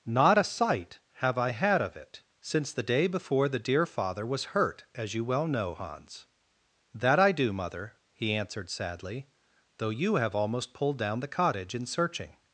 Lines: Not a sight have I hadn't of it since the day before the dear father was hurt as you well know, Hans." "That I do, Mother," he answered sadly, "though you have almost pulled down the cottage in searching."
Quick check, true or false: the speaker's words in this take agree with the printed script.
false